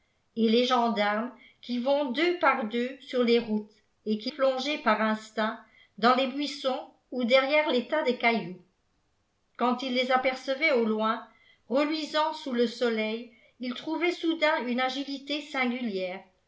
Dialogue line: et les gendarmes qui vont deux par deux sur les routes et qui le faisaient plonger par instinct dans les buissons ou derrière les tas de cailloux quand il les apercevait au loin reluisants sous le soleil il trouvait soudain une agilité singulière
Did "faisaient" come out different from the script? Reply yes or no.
yes